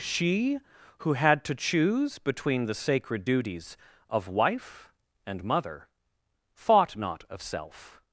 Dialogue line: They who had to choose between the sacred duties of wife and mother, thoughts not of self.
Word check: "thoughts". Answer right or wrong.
wrong